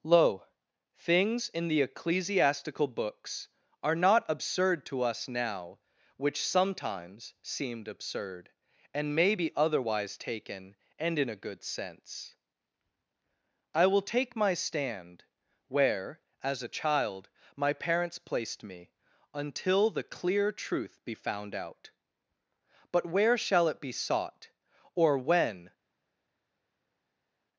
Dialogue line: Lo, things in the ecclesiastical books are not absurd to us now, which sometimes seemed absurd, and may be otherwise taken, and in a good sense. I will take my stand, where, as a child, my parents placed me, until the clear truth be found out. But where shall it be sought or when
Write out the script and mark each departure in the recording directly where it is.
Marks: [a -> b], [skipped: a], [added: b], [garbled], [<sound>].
Lo, things in the ecclesiastical books are not absurd to us now, which sometimes seemed absurd, and may be otherwise taken, and in a good sense. I will take my stand, where, as a child, my parents placed me, until the clear truth be found out. But where shall it be sought or when